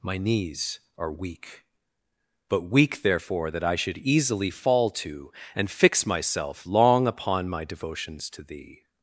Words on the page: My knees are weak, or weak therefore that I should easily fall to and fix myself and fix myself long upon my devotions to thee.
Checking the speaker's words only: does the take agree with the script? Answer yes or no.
no